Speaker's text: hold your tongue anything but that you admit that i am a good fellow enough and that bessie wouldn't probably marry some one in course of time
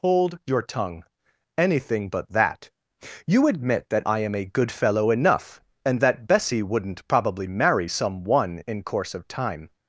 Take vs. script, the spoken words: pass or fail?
pass